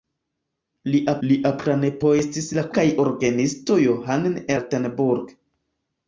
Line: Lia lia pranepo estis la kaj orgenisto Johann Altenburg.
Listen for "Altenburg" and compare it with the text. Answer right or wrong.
right